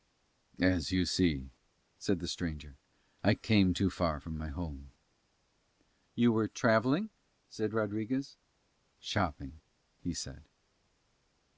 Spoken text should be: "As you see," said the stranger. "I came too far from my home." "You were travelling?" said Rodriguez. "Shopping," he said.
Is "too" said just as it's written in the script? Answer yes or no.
yes